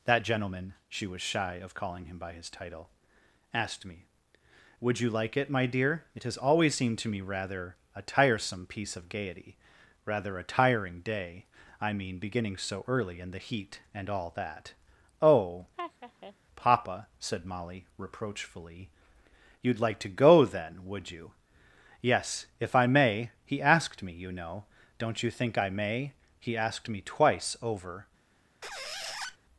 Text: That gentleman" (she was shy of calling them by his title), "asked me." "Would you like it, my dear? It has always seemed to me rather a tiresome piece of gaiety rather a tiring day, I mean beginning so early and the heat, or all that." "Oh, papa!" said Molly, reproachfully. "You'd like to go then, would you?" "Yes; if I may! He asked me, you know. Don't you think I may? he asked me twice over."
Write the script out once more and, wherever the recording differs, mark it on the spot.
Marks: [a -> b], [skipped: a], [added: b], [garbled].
That gentleman" (she was shy of calling [them -> him] by his title), "asked me." "Would you like it, my dear? It has always seemed to me rather a tiresome piece of gaiety rather a tiring day, I mean beginning so early and the heat, [or -> and] all that." "Oh, papa!" said Molly, reproachfully. "You'd like to go then, would you?" "Yes; if I may! He asked me, you know. Don't you think I may? he asked me twice over."